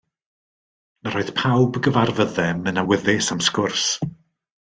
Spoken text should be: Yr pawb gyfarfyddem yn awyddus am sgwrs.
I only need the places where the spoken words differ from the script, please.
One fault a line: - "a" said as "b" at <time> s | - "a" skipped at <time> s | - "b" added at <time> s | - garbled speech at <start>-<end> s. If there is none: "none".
- "oedd" added at 1.2 s